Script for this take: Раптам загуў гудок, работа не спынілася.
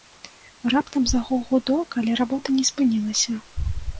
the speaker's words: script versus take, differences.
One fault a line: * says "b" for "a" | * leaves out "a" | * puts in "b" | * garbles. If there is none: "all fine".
* puts in "але"